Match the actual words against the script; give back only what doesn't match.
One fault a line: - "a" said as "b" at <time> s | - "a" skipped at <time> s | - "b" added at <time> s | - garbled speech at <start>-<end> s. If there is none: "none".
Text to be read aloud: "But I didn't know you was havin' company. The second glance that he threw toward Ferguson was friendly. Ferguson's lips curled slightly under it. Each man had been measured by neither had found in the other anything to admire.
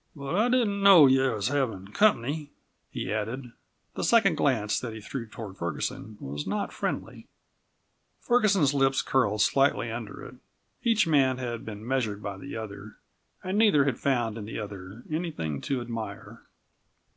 - "he added" added at 2.9 s
- "not" added at 6.5 s
- "the other and" added at 12.4 s